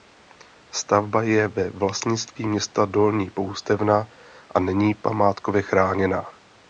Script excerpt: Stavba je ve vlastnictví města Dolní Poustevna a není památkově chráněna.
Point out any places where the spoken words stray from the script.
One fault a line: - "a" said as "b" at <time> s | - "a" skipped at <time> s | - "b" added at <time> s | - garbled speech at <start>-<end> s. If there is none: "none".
none